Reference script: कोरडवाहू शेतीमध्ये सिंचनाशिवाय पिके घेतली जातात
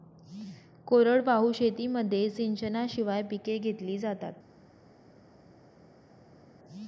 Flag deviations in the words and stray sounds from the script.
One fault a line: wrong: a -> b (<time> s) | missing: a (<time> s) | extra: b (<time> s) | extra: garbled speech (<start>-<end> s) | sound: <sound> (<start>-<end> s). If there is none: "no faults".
no faults